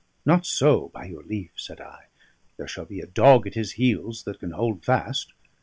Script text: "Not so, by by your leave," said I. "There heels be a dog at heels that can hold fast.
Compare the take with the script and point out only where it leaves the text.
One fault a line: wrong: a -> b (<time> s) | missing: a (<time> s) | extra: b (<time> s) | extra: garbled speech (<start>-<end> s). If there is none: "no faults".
missing: by (1.1 s)
wrong: heels -> shall (2.7 s)
extra: his (3.5 s)